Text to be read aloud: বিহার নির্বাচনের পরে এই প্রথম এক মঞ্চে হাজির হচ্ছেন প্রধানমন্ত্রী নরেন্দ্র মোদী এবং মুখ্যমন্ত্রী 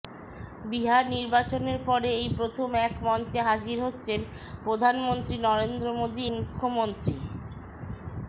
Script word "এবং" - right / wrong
wrong